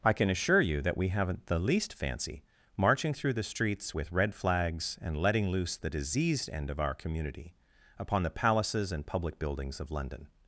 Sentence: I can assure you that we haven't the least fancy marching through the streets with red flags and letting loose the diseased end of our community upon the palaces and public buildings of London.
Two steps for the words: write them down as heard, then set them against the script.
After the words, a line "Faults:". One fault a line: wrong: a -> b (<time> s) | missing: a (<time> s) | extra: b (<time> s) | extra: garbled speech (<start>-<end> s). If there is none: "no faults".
I can assure you that we haven't the least fancy marching through the streets with red flags and letting loose the diseased end of our community upon the palaces and public buildings of London.
Faults:
no faults